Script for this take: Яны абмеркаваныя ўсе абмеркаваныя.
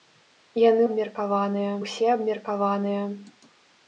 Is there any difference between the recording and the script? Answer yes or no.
no